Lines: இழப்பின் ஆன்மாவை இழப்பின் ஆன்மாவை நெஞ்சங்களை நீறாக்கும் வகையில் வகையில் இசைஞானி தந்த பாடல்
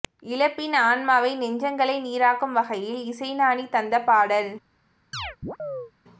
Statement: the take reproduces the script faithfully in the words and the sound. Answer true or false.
false